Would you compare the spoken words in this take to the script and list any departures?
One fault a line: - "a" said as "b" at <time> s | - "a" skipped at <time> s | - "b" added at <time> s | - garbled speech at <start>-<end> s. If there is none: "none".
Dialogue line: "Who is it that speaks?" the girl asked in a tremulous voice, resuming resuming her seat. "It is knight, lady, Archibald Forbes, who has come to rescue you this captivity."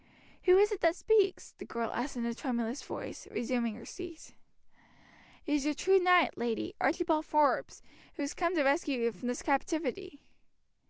- "resuming" skipped at 3.8 s
- "your true" added at 5.6 s
- "from" added at 9.1 s